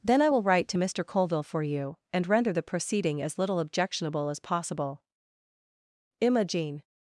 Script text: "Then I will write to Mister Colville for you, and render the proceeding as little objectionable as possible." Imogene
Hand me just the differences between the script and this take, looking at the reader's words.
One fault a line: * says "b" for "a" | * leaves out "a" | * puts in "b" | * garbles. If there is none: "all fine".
all fine